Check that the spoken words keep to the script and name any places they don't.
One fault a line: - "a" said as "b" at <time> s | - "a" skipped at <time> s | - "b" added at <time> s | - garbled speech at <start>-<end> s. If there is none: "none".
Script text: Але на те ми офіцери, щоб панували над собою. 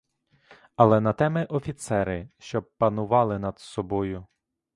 none